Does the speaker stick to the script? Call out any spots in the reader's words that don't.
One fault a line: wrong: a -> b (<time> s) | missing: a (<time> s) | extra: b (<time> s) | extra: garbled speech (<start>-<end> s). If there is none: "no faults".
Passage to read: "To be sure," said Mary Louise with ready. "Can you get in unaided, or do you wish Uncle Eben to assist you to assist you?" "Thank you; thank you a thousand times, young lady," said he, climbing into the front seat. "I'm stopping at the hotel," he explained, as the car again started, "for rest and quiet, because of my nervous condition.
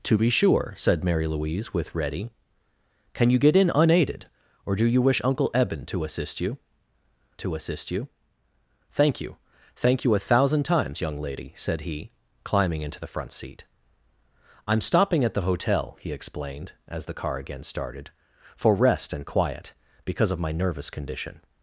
no faults